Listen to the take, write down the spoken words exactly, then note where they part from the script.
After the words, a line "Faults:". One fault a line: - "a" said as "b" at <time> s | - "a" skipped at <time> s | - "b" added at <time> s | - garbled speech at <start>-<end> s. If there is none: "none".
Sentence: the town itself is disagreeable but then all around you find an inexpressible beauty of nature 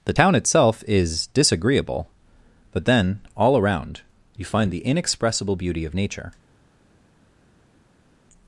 the town itself is disagreeable but then all around you find the inexpressible beauty of nature
Faults:
- "an" said as "the" at 4.7 s